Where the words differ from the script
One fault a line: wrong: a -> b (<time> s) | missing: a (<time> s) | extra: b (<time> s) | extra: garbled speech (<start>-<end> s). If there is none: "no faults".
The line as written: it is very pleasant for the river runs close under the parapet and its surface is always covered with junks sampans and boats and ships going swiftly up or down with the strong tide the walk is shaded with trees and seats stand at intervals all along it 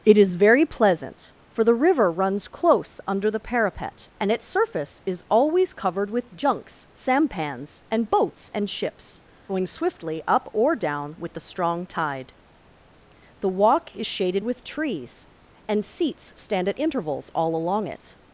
no faults